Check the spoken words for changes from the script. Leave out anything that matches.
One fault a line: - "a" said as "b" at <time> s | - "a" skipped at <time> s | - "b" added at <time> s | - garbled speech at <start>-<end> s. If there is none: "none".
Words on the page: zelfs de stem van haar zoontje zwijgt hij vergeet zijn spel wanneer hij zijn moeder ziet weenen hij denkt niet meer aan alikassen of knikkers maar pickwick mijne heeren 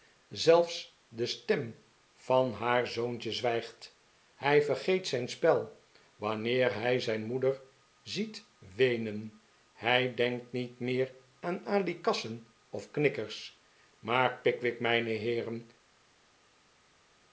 none